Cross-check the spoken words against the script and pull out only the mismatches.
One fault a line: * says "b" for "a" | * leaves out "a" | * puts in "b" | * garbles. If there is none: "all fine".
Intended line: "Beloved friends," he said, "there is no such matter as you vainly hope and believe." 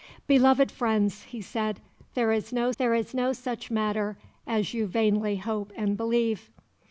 * puts in "there is no"